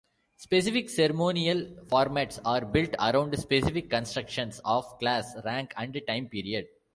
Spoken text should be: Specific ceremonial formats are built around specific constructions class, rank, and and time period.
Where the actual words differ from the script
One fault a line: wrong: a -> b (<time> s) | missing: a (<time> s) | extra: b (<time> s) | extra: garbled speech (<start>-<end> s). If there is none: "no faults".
extra: of (4.7 s)
missing: and (6.0 s)